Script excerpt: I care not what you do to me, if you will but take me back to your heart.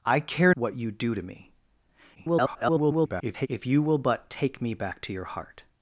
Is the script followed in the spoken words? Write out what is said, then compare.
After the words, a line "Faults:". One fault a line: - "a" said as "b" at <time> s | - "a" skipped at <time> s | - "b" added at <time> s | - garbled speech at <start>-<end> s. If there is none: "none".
I care what you do to me, [garbled] if you will but take me back to your heart.
Faults:
- "not" skipped at 0.6 s
- garbled speech at 2.2-3.5 s